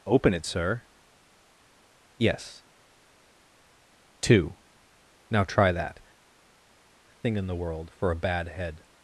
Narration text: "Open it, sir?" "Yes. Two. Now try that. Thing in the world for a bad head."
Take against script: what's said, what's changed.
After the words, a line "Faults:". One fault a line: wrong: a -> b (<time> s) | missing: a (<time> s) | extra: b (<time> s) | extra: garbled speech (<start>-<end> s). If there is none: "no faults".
"Open it, sir?" "Yes. Two. Now try that. Thing in the world for a bad head."
Faults:
no faults